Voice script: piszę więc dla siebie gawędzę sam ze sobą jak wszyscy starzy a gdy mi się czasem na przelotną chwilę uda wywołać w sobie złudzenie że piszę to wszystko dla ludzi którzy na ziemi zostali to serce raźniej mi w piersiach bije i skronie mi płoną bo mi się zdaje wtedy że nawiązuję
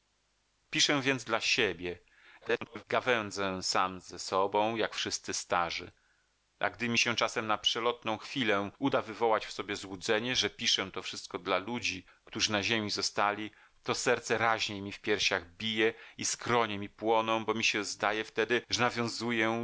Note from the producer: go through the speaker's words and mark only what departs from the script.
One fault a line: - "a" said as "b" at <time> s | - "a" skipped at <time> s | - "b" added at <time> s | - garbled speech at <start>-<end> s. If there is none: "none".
- garbled speech at 2.4-2.8 s